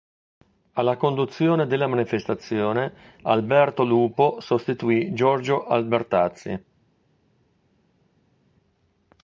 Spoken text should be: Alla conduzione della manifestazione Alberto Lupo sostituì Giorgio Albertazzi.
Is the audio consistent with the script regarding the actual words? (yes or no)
yes